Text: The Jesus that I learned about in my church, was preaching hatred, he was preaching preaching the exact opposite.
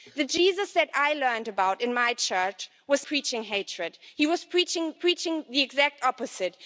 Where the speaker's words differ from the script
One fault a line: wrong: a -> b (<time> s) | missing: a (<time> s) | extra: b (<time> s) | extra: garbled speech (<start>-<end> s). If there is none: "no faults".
no faults